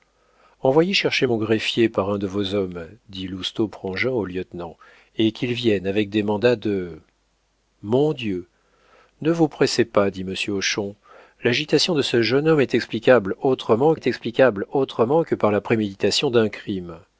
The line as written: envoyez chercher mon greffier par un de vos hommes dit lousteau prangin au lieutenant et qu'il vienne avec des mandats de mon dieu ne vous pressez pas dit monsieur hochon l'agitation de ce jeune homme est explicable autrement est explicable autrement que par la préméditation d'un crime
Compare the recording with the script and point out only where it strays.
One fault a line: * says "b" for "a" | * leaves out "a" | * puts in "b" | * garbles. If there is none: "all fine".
all fine